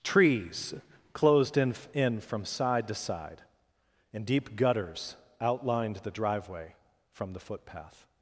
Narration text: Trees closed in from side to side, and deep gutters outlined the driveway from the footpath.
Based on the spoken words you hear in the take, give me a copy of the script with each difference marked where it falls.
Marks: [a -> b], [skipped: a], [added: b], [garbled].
Trees closed in [added: in] from side to side, and deep gutters outlined the driveway from the footpath.